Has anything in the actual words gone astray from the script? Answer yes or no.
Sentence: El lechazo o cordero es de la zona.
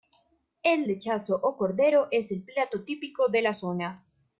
yes